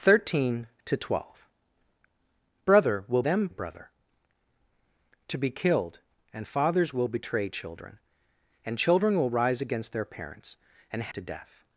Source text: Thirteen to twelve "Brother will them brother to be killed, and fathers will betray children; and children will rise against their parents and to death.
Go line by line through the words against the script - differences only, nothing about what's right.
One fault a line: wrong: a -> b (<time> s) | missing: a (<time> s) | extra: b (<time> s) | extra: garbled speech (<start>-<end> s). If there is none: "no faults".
no faults